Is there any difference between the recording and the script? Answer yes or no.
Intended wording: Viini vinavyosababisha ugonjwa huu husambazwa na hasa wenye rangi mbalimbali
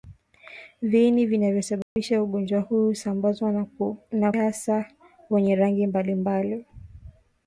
no